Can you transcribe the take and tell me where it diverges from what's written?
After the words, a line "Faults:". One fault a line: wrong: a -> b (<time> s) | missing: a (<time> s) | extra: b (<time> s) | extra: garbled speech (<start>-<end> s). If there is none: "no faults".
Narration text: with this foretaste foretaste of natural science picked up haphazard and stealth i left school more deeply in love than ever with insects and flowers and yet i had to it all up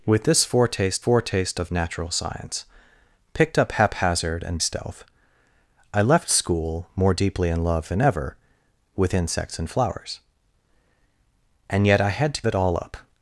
with this foretaste foretaste of natural science picked up haphazard and stealth i left school more deeply in love than ever with insects and flowers and yet i had to it all up
Faults:
no faults